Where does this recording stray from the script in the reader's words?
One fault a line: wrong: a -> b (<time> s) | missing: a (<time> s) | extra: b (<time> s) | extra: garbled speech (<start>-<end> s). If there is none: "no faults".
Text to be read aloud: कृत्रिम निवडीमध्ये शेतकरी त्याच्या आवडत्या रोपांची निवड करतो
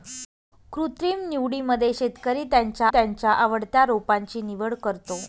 extra: त्याच्या (2.9 s)